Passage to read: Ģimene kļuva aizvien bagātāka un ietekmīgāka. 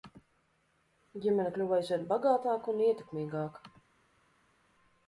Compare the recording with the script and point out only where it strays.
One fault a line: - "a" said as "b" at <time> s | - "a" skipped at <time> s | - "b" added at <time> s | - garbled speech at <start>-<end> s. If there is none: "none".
none